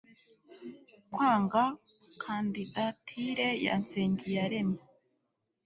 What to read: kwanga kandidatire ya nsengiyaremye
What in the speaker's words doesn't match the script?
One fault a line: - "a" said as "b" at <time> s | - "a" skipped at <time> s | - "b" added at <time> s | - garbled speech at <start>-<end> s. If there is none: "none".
none